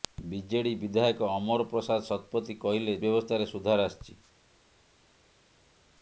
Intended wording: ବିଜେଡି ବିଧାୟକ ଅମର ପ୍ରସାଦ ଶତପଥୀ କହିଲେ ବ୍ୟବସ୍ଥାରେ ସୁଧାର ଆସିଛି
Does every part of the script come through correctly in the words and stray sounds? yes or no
yes